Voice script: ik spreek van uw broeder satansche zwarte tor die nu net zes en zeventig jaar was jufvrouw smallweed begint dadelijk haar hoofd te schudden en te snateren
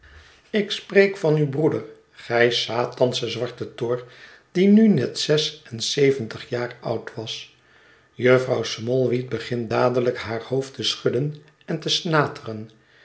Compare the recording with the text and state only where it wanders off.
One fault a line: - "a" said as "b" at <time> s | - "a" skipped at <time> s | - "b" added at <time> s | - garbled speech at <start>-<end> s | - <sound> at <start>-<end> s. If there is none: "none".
- "gij" added at 2.1 s
- "oud" added at 6.8 s